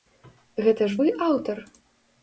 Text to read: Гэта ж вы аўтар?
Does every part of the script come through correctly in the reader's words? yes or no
yes